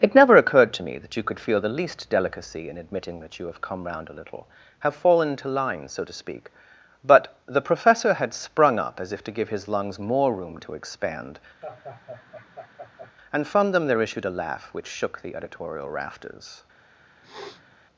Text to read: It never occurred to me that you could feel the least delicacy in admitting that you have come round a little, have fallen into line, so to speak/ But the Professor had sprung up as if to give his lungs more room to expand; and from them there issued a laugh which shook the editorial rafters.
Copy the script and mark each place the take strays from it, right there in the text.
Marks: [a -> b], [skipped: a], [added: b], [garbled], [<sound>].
It never occurred to me that you could feel the least delicacy in admitting that you have come round a little, have fallen into line, so to speak/ But the Professor had sprung up as if to give his lungs more room to expand; [laugh] and from them there issued a laugh which shook the editorial rafters. [sniff]